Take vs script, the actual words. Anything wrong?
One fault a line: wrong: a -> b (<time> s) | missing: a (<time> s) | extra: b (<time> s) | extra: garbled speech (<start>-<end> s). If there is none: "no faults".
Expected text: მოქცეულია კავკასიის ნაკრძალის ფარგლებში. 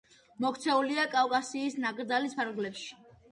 no faults